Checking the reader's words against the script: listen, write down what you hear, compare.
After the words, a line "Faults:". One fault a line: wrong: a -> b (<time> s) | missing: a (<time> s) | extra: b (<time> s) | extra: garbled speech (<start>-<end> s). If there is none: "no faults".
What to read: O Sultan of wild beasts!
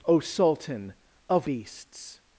O Sultan of beasts!
Faults:
missing: wild (1.5 s)